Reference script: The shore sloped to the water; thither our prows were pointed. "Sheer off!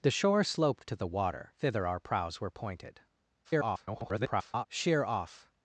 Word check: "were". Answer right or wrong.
right